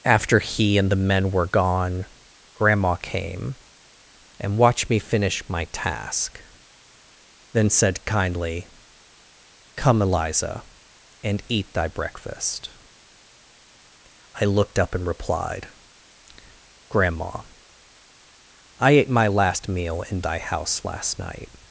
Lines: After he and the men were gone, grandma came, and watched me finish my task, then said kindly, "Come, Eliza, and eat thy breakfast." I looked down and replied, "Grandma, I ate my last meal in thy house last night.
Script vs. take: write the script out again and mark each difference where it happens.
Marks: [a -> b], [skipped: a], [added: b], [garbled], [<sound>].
After he and the men were gone, grandma came, and watched me finish my task, then said kindly, "Come, Eliza, and eat thy breakfast." I looked [down -> up] and replied, "Grandma, I ate my last meal in thy house last night.